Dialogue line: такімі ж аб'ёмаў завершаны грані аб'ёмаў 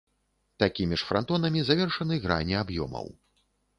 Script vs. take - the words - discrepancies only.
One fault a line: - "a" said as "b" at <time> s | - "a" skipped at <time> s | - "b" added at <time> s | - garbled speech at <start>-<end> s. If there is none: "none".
- "аб'ёмаў" said as "франтонамі" at 1.1 s